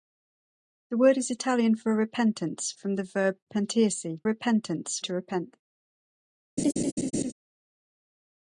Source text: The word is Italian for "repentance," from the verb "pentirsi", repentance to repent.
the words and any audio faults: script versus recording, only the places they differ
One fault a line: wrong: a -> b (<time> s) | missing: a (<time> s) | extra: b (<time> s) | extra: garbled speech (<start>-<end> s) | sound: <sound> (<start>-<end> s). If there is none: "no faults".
sound: laugh (6.6-7.3 s)